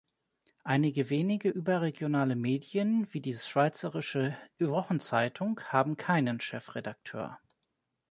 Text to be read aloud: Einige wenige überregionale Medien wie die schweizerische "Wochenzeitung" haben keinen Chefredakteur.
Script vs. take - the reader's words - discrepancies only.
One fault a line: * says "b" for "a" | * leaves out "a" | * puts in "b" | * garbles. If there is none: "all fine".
all fine